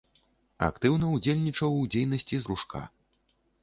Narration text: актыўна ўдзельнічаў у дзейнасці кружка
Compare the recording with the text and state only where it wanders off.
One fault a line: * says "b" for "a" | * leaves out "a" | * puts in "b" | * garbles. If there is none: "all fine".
all fine